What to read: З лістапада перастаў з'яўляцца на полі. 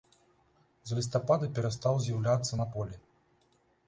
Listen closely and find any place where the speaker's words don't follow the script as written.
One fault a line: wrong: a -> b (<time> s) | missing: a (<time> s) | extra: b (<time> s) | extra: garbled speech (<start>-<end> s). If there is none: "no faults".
no faults